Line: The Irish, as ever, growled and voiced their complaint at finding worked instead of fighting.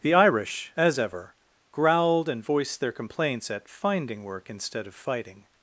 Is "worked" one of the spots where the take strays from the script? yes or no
yes